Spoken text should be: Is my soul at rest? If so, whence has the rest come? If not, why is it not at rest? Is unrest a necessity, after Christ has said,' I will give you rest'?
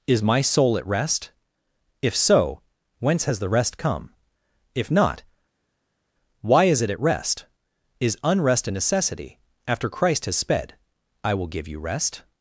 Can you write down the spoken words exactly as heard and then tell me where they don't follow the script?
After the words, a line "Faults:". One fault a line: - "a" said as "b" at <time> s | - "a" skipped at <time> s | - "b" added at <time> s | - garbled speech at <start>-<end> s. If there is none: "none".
Is my soul at rest? If so, whence has the rest come? If not, why is it at rest? Is unrest a necessity, after Christ has sped,' I will give you rest'?
Faults:
- "not" skipped at 6.9 s
- "said" said as "sped" at 10.4 s